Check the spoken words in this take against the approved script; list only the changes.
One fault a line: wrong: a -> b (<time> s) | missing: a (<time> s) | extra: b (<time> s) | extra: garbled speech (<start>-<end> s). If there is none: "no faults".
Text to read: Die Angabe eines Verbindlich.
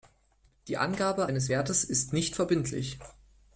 extra: Wertes ist nicht (1.5 s)